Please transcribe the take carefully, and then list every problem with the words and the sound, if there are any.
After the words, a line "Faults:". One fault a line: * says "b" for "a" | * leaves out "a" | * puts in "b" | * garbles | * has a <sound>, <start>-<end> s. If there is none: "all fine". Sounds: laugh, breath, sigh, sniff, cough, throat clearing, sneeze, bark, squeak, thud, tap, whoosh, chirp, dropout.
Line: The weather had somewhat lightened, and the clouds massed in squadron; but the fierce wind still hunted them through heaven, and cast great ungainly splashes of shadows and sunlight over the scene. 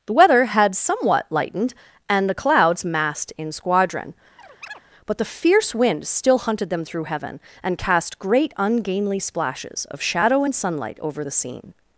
The weather had somewhat lightened, and the clouds massed in squadron; but the fierce wind still hunted them through heaven, and cast great ungainly splashes of shadow and sunlight over the scene.
Faults:
* has a chirp, 4.4-4.8 s
* says "shadow" for "shadows"